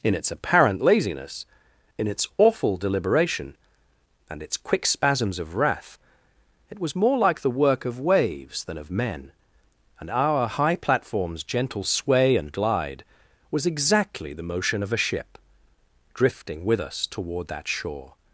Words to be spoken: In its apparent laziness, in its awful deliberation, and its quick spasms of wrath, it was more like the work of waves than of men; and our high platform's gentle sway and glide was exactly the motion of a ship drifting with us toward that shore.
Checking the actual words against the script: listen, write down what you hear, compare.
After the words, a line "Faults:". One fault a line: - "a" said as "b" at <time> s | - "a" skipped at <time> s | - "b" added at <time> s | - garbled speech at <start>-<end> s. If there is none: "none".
In its apparent laziness, in its awful deliberation, and its quick spasms of wrath, it was more like the work of waves than of men; and our high platform's gentle sway and glide was exactly the motion of a ship drifting with us toward that shore.
Faults:
none